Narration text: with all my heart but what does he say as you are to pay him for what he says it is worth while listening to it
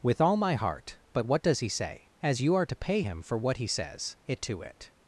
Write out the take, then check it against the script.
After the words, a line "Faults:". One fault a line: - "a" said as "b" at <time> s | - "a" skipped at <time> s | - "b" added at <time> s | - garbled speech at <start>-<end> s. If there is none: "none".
with all my heart but what does he say as you are to pay him for what he says it to it
Faults:
- "is worth while listening" skipped at 4.4 s